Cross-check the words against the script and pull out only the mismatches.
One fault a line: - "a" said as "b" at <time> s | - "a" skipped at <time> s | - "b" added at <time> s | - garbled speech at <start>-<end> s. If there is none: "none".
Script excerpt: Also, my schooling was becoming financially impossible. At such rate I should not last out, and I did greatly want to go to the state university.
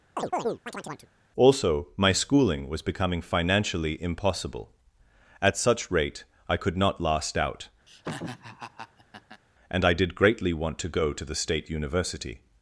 - "should" said as "could" at 6.6 s